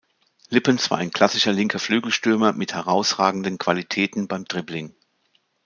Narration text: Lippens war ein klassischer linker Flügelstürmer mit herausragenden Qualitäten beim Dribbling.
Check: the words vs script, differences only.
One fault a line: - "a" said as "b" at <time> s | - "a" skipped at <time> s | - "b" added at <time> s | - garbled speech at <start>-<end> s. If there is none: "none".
none